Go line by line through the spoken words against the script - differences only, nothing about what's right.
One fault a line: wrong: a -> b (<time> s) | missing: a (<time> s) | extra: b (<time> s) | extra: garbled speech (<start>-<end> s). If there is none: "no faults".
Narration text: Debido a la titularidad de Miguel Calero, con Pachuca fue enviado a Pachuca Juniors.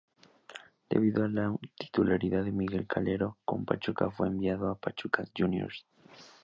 no faults